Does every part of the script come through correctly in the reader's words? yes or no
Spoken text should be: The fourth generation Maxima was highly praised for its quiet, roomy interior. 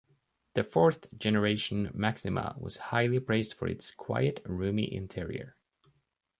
yes